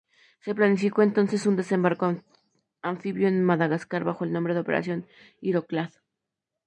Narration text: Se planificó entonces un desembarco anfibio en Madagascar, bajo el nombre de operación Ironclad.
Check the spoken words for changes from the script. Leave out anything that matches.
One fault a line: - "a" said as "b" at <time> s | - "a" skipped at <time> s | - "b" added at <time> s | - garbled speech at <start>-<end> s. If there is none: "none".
none